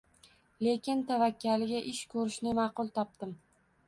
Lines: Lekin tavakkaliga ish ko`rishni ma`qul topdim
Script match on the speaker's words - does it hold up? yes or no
yes